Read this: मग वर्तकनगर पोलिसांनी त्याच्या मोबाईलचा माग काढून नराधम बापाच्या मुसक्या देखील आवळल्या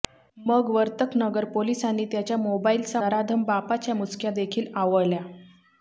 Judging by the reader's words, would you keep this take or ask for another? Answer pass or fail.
fail